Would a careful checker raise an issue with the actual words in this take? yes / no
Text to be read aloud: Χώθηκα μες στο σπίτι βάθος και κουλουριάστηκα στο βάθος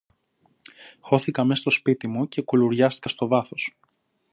yes